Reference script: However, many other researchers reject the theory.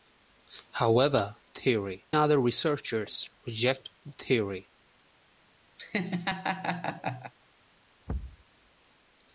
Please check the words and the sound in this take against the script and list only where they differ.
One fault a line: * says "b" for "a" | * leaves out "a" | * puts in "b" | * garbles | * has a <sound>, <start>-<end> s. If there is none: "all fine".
* says "theory" for "many"
* has a laugh, 5.8-7.3 s
* has a thud, 8.1-8.4 s